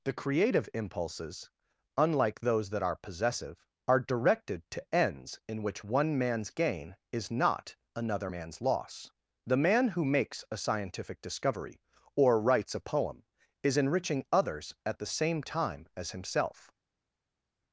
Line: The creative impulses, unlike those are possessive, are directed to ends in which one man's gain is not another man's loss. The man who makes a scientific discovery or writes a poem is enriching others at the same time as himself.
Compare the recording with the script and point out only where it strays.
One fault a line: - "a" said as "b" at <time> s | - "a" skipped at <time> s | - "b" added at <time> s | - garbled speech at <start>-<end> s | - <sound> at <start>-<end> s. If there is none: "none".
- "that" added at 2.7 s